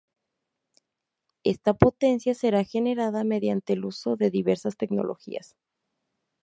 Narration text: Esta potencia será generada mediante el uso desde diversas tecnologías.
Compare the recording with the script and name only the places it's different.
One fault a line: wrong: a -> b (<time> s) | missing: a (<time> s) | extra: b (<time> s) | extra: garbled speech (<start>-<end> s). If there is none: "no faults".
wrong: desde -> de (4.2 s)